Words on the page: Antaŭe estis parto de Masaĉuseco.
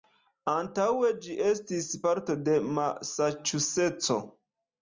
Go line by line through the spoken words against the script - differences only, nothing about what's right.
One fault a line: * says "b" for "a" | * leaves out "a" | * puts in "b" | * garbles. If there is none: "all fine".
* puts in "ĝi"